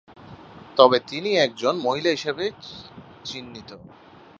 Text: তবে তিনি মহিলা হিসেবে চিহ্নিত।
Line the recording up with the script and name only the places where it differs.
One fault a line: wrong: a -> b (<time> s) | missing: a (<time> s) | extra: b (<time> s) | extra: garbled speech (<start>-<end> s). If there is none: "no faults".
extra: একজন (1.4 s)